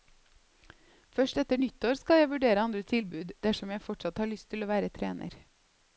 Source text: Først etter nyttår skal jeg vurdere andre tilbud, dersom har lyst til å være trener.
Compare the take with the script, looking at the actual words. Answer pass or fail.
fail